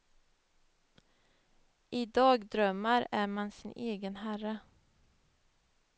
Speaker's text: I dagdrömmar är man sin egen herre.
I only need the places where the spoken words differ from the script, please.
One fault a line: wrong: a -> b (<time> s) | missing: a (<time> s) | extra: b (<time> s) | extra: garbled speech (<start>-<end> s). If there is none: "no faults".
no faults